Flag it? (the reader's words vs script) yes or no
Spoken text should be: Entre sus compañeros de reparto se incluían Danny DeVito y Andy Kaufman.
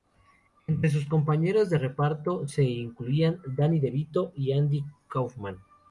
no